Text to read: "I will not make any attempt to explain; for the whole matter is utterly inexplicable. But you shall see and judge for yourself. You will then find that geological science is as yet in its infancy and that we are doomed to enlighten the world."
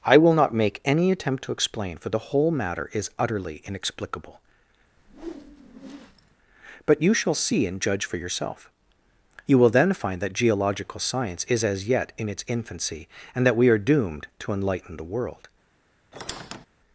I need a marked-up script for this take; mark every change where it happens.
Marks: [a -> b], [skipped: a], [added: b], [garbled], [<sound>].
"I will not make any attempt to explain; for the whole matter is utterly inexplicable. [whoosh] But you shall see and judge for yourself. You will then find that geological science is as yet in its infancy and that we are doomed to enlighten the world." [squeak]